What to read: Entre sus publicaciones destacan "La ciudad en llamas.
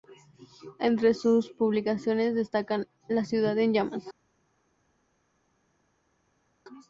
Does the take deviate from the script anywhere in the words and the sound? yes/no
no